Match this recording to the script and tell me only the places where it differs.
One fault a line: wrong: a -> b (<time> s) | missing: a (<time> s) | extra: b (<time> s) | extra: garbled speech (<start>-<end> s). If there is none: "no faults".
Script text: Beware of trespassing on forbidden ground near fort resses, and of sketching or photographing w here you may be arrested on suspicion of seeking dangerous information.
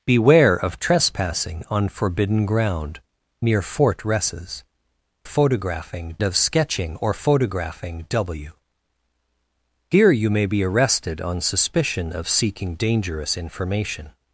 wrong: and -> photographing (5.2 s)